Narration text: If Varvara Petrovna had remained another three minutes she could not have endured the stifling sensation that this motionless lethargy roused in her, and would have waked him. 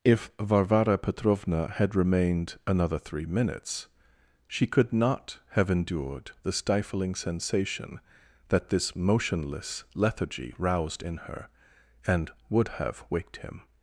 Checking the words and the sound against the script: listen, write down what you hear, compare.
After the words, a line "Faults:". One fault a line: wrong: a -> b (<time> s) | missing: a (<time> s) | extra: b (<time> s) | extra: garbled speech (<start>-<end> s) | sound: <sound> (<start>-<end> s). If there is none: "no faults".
If Varvara Petrovna had remained another three minutes she could not have endured the stifling sensation that this motionless lethargy roused in her, and would have waked him.
Faults:
no faults